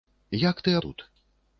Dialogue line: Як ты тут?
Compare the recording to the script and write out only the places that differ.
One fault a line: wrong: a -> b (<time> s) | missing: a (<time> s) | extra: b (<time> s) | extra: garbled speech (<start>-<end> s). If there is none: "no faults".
no faults